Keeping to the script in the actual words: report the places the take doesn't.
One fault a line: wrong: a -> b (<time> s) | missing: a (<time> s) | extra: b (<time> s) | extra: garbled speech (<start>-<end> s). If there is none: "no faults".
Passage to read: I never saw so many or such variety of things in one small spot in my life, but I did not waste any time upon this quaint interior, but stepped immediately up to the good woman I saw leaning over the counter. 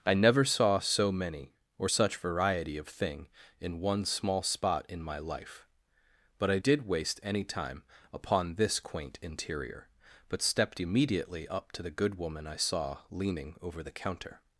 wrong: things -> thing (2.9 s)
missing: not (6.9 s)